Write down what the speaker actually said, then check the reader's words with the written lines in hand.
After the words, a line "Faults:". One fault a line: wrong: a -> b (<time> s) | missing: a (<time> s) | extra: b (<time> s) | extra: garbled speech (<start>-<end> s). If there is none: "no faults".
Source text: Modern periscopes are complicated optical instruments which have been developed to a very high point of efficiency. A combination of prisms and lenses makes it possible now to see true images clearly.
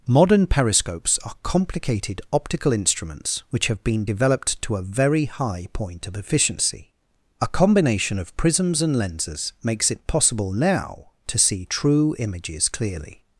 Modern periscopes are complicated optical instruments which have been developed to a very high point of efficiency. A combination of prisms and lenses makes it possible now to see true images clearly.
Faults:
no faults